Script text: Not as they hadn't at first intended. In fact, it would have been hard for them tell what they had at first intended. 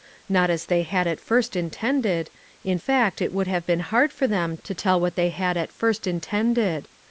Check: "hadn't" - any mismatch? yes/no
yes